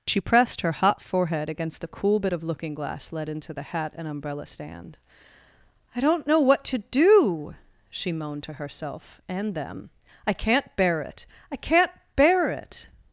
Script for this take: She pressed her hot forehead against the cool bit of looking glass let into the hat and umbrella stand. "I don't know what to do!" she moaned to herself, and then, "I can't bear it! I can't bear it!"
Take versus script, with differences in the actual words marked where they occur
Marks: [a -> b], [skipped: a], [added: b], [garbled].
She pressed her hot forehead against the cool bit of looking glass let into the hat and umbrella stand. "I don't know what to do!" she moaned to herself, and [then, -> them] "I can't bear it! I can't bear it!"